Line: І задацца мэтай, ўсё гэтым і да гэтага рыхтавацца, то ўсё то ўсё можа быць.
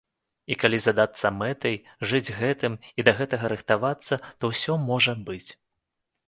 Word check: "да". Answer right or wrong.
right